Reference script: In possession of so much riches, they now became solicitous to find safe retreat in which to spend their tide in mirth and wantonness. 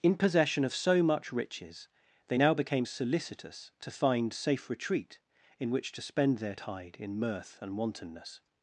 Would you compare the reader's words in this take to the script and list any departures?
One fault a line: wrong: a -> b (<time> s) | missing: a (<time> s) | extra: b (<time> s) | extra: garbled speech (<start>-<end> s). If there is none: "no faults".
no faults